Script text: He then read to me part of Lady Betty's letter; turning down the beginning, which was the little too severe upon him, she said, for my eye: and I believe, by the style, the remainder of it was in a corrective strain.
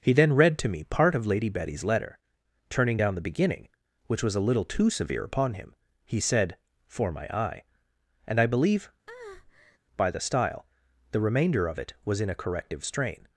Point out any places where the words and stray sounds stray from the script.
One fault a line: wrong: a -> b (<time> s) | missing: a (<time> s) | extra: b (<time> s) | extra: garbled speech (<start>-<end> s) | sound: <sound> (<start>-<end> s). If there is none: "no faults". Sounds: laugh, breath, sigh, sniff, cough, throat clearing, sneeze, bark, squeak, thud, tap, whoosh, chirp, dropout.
wrong: the -> a (4.4 s)
wrong: she -> he (6.1 s)
sound: breath (9.1-9.8 s)